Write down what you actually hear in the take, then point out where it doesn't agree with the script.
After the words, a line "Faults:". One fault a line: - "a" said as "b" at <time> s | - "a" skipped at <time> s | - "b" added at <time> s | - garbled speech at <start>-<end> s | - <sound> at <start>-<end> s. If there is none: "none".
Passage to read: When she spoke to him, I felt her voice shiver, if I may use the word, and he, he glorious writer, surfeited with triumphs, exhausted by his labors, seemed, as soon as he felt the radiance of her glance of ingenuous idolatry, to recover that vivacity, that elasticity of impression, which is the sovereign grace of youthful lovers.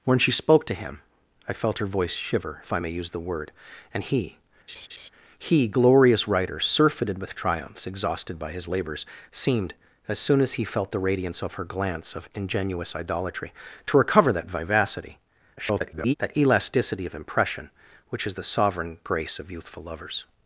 When she spoke to him, I felt her voice shiver, if I may use the word, and he, he glorious writer, surfeited with triumphs, exhausted by his labors, seemed, as soon as he felt the radiance of her glance of ingenuous idolatry, to recover that vivacity, [garbled] that elasticity of impression, which is the sovereign grace of youthful lovers.
Faults:
- laugh at 4.7-5.1 s
- garbled speech at 15.6-16.1 s